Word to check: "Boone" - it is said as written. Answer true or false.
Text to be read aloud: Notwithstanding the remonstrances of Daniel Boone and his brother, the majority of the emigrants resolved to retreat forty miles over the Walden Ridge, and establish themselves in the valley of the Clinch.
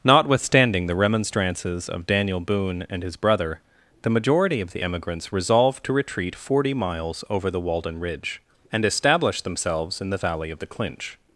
true